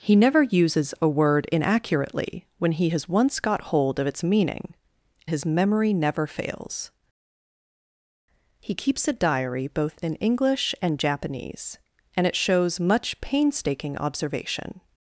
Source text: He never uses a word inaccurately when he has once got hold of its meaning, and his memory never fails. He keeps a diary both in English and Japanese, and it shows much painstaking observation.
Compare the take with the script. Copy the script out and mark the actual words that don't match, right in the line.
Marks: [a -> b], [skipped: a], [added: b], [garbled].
He never uses a word inaccurately when he has once got hold of its meaning, [skipped: and] his memory never fails. He keeps a diary both in English and Japanese, and it shows much painstaking observation.